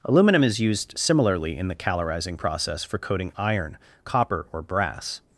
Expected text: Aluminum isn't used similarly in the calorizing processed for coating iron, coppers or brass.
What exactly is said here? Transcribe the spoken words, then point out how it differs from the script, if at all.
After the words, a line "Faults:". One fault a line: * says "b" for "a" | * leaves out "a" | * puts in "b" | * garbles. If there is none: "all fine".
Aluminum is used similarly in the calorizing process for coating iron, copper or brass.
Faults:
* says "is" for "isn't"
* says "process" for "processed"
* says "copper" for "coppers"